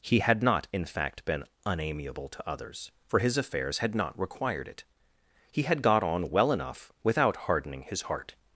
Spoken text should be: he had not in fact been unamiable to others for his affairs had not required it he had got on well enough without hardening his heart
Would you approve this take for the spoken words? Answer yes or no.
yes